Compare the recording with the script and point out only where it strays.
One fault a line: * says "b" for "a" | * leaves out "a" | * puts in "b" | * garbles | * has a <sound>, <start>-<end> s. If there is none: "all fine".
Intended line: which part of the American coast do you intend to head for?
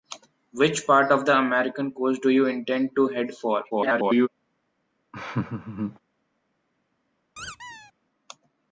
* garbles
* has a laugh, 5.1-6.0 s
* has a squeak, 7.4-7.9 s